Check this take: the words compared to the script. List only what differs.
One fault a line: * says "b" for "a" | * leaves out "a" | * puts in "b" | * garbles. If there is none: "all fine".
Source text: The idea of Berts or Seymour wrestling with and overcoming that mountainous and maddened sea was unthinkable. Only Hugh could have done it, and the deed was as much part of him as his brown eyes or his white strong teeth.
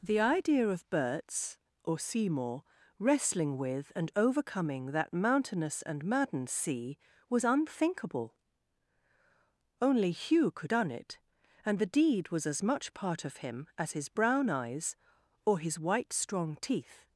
* leaves out "have"